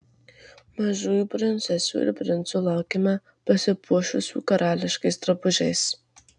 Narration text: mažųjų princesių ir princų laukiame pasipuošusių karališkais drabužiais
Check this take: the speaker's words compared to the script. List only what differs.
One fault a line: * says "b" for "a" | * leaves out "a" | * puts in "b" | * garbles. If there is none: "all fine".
all fine